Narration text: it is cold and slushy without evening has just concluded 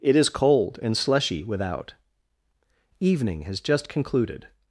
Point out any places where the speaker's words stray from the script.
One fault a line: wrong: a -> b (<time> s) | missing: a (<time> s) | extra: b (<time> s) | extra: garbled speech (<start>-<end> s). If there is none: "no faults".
no faults